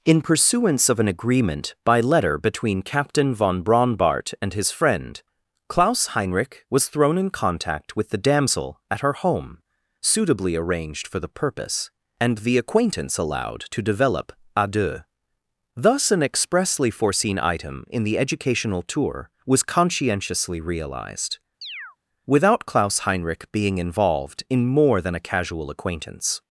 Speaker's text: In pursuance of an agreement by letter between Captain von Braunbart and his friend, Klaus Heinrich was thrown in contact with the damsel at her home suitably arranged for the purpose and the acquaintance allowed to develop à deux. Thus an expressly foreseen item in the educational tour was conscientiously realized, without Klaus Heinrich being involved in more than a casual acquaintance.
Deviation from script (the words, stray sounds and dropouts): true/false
true